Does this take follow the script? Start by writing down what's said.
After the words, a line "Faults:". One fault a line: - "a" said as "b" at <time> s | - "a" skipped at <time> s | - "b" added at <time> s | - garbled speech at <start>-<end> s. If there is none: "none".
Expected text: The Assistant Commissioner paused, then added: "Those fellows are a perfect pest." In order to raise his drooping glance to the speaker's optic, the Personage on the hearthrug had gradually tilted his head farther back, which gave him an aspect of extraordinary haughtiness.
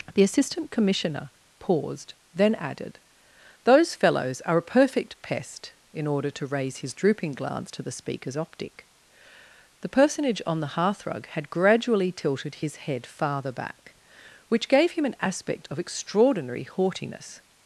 The Assistant Commissioner paused, then added: "Those fellows are a perfect pest." In order to raise his drooping glance to the speaker's optic, the Personage on the hearthrug had gradually tilted his head farther back, which gave him an aspect of extraordinary haughtiness.
Faults:
none